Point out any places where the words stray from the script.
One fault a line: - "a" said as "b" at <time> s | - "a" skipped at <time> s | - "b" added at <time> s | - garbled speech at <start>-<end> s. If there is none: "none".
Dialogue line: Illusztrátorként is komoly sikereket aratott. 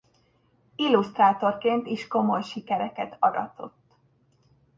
none